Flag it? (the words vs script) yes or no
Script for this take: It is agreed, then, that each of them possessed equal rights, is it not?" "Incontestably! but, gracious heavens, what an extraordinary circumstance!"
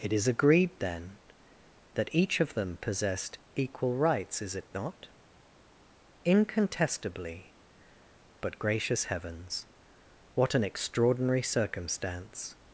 no